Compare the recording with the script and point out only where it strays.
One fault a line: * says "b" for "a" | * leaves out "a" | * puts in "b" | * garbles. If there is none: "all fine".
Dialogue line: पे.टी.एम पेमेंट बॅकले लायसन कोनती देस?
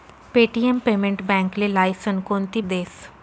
all fine